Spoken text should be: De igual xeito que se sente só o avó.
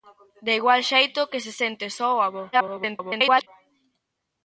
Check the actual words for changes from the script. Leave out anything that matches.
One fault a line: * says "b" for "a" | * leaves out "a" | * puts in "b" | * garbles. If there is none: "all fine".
* garbles